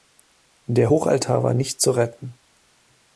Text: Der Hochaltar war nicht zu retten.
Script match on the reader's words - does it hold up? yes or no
yes